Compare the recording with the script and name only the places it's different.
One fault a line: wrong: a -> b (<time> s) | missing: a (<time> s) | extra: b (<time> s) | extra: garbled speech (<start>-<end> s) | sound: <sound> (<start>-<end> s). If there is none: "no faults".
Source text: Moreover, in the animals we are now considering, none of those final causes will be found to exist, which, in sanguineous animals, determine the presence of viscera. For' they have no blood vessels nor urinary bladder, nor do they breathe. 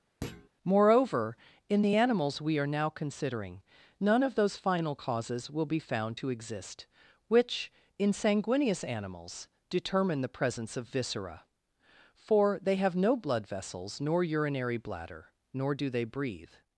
sound: thud (0.2-0.5 s)